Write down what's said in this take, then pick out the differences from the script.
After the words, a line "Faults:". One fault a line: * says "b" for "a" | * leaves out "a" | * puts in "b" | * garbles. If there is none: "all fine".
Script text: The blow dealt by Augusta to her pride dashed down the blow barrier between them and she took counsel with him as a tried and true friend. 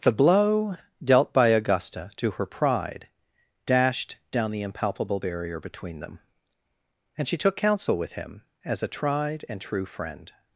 The blow dealt by Augusta to her pride dashed down the impalpable barrier between them and she took counsel with him as a tried and true friend.
Faults:
* says "impalpable" for "blow"